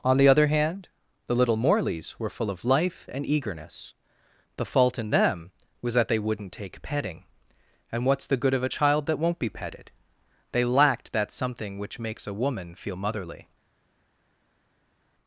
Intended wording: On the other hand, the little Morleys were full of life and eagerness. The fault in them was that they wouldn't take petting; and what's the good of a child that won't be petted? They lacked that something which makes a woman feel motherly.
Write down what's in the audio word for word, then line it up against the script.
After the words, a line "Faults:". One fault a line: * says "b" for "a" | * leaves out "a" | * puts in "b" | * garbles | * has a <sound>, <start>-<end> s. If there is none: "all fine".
On the other hand, the little Morleys were full of life and eagerness. The fault in them was that they wouldn't take petting; and what's the good of a child that won't be petted? They lacked that something which makes a woman feel motherly.
Faults:
all fine